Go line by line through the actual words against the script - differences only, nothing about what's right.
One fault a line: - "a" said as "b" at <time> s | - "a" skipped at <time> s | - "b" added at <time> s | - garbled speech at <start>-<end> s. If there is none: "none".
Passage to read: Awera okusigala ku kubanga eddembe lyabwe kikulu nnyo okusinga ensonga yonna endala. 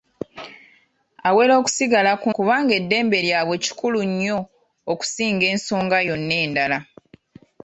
none